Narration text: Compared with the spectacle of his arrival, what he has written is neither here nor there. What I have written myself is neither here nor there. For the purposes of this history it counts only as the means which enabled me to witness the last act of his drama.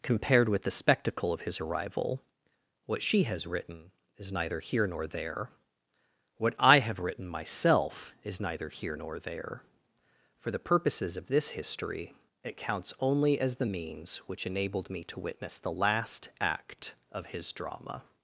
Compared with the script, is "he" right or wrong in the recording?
wrong